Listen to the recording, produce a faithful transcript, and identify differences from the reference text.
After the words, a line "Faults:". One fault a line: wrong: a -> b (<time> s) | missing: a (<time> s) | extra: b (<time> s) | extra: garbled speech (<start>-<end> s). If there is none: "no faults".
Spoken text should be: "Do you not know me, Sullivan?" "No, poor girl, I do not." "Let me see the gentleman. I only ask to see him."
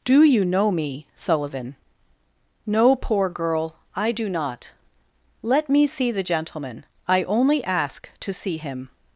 "Do you know me, Sullivan?" "No, poor girl, I do not." "Let me see the gentleman. I only ask to see him."
Faults:
missing: not (0.4 s)